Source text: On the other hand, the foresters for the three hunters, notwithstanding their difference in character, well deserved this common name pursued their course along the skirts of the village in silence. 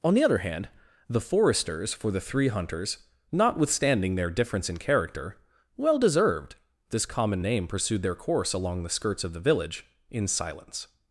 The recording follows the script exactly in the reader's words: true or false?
true